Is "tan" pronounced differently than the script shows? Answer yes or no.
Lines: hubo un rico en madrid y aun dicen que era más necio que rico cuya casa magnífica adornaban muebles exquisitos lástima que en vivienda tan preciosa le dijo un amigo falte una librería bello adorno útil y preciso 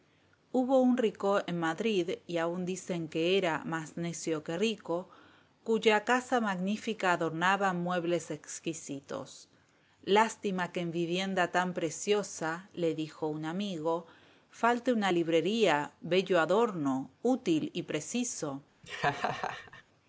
no